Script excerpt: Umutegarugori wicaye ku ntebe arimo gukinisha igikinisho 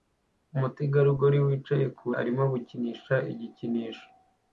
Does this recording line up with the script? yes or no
no